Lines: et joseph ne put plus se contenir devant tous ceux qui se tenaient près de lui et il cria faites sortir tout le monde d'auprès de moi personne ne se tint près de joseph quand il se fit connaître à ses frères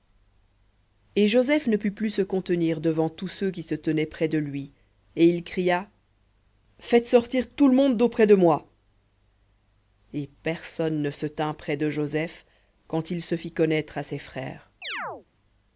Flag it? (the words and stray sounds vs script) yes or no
yes